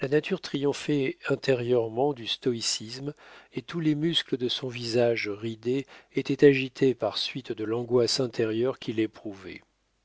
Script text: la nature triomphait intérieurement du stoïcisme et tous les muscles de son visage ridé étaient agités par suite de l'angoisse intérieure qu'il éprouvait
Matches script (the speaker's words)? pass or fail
pass